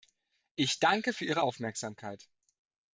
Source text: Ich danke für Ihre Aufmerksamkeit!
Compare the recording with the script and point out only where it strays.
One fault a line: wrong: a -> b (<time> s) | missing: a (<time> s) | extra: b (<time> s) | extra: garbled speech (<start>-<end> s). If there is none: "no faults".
no faults